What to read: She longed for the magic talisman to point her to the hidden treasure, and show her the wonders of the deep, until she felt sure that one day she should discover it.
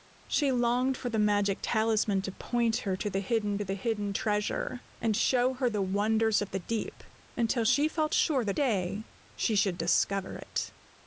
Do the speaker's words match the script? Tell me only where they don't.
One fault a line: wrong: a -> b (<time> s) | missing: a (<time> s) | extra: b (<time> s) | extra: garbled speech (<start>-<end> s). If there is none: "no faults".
extra: the hidden (3.6 s)
missing: one (8.6 s)